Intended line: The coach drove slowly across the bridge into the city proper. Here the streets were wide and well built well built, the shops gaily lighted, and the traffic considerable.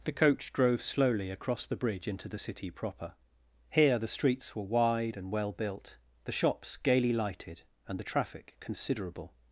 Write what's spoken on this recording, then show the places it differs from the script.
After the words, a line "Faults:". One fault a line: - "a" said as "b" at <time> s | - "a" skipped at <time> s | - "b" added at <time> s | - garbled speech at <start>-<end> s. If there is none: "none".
The coach drove slowly across the bridge into the city proper. Here the streets were wide and well built, the shops gaily lighted, and the traffic considerable.
Faults:
- "well built" skipped at 6.0 s